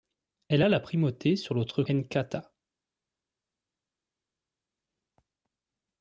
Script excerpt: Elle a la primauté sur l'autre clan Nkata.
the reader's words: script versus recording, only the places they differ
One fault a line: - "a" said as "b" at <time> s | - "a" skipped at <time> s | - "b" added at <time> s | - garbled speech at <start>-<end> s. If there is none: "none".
- "clan" skipped at 1.8 s